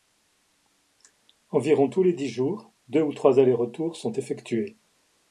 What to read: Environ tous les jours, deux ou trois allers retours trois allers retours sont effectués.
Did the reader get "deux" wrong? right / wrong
right